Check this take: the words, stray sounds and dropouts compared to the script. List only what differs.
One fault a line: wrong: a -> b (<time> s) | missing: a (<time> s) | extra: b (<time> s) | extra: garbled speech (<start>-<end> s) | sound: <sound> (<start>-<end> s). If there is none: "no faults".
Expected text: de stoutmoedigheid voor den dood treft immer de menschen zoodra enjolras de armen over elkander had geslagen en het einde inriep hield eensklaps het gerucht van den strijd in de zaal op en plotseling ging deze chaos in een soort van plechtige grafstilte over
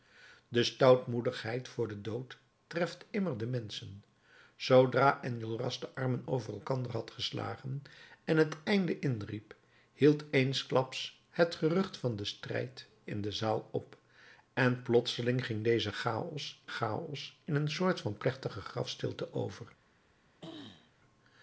extra: chaos (16.7 s)
sound: throat clearing (20.4-20.9 s)